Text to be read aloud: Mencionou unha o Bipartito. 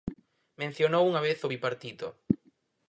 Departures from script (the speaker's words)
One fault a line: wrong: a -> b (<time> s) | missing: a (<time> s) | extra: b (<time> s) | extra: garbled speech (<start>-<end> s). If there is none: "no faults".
extra: vez (1.3 s)